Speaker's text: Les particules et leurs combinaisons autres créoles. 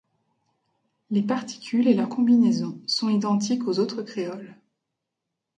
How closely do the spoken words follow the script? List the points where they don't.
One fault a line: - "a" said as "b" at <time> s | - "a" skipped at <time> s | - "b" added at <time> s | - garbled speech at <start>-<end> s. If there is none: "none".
- "sont identiques aux" added at 2.9 s